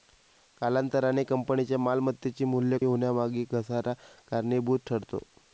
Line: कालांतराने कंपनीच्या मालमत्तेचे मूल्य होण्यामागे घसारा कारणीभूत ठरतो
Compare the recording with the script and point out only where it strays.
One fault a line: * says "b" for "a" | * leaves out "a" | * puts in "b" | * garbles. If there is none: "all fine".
all fine